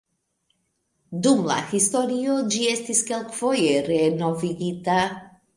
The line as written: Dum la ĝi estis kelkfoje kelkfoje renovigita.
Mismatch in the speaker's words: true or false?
true